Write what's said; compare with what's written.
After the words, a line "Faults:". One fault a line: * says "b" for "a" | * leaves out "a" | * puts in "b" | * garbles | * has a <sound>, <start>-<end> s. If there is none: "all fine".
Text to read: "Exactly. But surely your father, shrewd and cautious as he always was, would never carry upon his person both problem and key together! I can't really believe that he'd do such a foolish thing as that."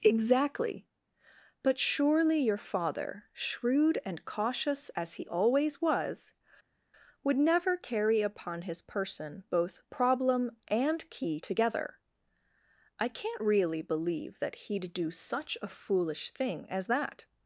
"Exactly. But surely your father, shrewd and cautious as he always was, would never carry upon his person both problem and key together! I can't really believe that he'd do such a foolish thing as that."
Faults:
all fine